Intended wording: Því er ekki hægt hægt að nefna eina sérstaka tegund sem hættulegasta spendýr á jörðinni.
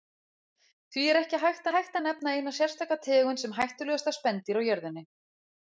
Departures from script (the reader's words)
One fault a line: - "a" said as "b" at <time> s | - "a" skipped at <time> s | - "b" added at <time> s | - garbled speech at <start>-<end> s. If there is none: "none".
none